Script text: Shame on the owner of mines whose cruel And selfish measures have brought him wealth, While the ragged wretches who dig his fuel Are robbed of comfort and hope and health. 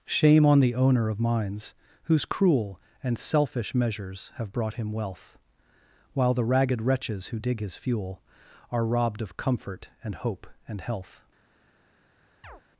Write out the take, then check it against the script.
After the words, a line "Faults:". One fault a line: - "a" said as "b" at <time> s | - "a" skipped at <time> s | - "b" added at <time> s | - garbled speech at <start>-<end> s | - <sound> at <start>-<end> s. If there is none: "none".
Shame on the owner of mines whose cruel And selfish measures have brought him wealth, While the ragged wretches who dig his fuel Are robbed of comfort and hope and health.
Faults:
- chirp at 12.4-12.6 s